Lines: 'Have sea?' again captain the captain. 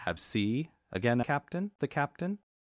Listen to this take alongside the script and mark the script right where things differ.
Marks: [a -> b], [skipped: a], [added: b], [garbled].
'Have sea?' again captain the captain.